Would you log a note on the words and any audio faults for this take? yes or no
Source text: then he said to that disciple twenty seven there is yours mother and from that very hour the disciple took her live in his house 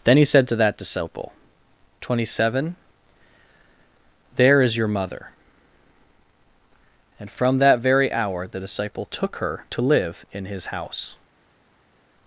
yes